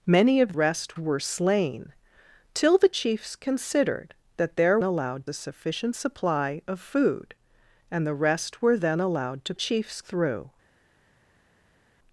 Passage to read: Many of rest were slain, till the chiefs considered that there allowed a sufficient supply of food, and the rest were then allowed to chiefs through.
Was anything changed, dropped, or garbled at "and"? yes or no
no